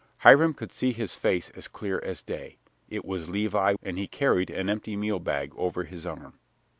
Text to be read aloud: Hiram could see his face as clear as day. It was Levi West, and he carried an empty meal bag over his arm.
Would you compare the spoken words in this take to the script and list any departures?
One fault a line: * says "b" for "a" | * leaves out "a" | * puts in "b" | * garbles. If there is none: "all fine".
* leaves out "West"